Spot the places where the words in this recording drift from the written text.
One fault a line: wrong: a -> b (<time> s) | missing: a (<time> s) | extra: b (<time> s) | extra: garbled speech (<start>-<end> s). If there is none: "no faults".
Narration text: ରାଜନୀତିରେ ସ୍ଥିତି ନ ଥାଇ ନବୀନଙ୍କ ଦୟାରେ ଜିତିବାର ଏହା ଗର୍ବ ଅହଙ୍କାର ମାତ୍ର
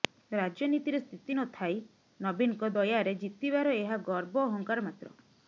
no faults